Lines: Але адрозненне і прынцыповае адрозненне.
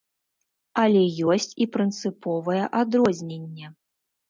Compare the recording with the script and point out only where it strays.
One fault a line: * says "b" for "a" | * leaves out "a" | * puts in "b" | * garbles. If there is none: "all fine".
* says "ёсць" for "адрозненне"